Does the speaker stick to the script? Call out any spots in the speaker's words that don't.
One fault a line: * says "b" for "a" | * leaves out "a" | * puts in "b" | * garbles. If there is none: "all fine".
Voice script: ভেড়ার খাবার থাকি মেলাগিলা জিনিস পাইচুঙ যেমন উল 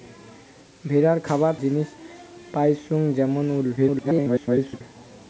* leaves out "থাকি মেলাগিলা"
* garbles